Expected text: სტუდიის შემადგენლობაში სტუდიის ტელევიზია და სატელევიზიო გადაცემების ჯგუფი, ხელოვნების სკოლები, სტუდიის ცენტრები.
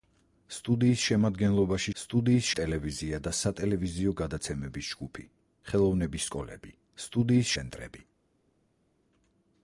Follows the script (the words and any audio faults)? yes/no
yes